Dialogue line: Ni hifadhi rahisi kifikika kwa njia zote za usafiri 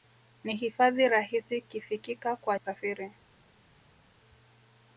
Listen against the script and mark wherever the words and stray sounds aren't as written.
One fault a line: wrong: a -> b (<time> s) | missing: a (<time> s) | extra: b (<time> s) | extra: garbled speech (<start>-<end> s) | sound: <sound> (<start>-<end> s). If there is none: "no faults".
missing: njia zote za (2.6 s)